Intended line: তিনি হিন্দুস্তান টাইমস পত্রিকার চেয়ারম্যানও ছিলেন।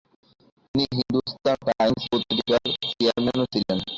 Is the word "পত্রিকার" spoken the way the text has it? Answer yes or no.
yes